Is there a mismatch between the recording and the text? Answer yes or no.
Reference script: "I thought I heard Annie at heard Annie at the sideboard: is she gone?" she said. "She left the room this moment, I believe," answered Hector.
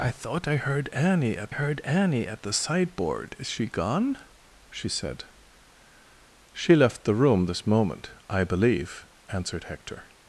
no